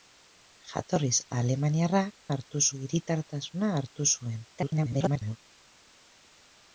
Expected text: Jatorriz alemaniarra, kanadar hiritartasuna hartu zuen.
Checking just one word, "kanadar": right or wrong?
wrong